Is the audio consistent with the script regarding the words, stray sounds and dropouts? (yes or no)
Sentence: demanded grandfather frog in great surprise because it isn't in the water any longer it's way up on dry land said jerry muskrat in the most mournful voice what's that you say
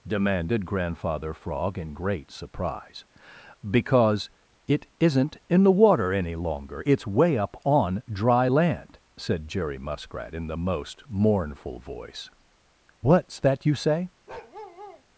no